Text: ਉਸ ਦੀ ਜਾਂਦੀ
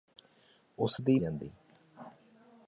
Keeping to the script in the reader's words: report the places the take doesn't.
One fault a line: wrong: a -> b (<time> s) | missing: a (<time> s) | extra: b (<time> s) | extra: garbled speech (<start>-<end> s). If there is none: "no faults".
no faults